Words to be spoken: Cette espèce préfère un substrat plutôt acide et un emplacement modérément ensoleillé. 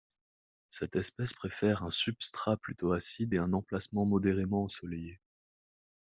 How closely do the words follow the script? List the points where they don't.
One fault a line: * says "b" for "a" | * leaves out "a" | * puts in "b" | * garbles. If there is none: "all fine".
all fine